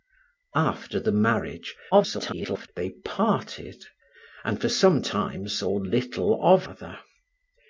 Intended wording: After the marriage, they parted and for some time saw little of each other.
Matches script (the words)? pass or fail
fail